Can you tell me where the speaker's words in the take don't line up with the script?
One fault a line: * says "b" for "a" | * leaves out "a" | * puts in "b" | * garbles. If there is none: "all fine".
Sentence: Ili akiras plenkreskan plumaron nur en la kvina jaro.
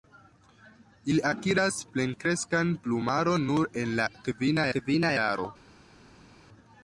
* puts in "kvina"